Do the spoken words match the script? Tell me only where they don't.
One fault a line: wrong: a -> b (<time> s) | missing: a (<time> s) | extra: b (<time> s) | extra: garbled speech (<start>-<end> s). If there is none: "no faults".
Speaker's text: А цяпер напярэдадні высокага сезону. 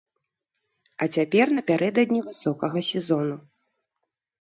no faults